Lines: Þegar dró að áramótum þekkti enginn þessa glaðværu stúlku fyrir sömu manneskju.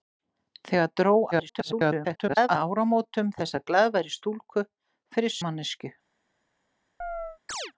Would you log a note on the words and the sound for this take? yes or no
yes